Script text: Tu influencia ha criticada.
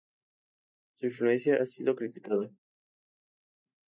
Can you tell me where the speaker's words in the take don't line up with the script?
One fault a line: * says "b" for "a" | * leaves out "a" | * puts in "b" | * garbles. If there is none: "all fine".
* says "Su" for "Tu"
* puts in "sido"